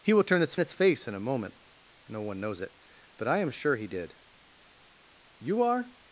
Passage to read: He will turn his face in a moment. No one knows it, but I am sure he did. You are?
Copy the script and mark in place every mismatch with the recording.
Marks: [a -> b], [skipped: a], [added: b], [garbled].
He will turn his [added: his] face in a moment. No one knows it, but I am sure he did. You are?